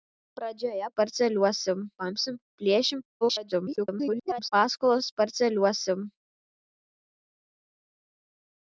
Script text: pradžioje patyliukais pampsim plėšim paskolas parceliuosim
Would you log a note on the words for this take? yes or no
yes